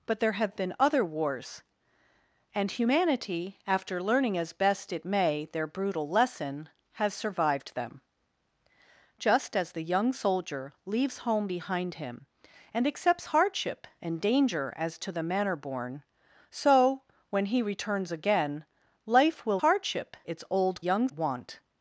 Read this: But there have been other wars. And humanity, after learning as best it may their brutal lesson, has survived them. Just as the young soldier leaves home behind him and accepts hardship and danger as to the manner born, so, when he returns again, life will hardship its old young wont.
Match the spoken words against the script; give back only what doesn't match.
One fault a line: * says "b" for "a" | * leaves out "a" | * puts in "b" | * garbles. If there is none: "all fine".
all fine